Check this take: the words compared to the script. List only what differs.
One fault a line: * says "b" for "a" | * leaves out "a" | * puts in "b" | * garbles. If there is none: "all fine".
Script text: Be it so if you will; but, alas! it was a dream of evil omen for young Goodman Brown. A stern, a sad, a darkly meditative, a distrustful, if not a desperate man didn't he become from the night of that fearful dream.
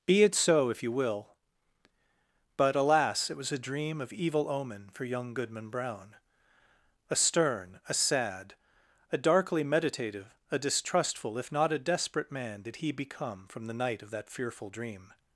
* says "did" for "didn't"